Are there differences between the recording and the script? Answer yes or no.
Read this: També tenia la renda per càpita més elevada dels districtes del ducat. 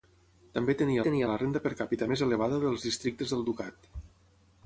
yes